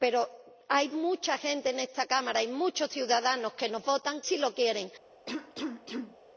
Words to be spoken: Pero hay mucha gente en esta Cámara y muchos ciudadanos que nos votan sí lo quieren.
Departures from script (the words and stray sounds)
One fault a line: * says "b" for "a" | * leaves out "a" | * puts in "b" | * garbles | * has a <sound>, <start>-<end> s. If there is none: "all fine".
* has a cough, 5.3-6.2 s